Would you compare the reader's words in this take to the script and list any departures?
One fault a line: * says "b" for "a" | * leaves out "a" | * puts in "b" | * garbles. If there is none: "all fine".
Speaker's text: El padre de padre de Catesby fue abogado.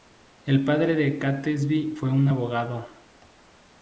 * leaves out "padre de"
* puts in "un"